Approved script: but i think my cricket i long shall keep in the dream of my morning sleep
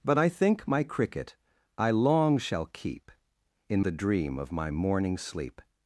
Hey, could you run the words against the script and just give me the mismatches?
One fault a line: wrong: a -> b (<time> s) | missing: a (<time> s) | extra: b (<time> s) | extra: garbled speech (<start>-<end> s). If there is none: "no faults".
no faults